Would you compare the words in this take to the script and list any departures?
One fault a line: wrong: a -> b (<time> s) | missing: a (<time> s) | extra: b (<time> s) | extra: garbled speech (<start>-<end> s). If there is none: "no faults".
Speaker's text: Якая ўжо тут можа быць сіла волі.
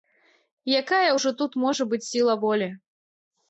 no faults